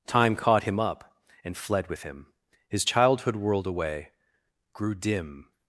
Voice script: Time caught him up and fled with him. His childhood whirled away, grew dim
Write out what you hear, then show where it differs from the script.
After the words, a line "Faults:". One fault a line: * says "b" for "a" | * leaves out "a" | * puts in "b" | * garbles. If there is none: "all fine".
Time caught him up and fled with him. His childhood whirled away, grew dim
Faults:
all fine